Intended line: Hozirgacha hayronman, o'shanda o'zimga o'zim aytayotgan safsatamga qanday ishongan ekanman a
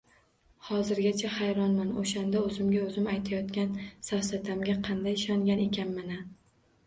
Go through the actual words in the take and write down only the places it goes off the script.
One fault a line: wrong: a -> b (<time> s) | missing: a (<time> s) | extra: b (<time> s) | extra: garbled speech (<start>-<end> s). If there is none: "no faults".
no faults